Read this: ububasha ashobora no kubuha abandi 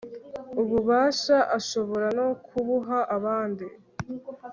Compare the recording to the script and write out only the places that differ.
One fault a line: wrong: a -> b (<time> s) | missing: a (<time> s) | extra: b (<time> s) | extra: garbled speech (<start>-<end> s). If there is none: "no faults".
no faults